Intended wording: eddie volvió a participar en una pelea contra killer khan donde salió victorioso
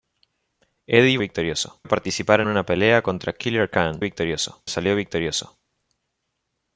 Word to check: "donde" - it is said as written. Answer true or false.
false